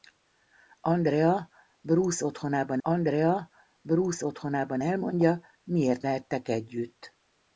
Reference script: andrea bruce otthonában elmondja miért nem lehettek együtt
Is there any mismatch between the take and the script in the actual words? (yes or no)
yes